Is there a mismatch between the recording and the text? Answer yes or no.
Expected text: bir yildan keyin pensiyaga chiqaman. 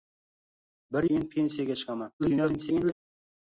yes